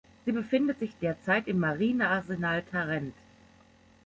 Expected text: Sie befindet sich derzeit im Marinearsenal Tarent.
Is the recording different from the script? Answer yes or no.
no